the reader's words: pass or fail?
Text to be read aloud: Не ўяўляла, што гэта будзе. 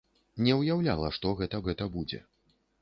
fail